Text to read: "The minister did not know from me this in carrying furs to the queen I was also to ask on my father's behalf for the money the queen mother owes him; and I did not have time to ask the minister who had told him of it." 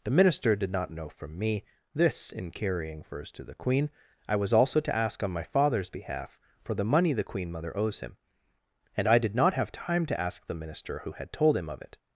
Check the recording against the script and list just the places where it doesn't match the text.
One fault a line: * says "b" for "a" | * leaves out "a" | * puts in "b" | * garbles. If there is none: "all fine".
all fine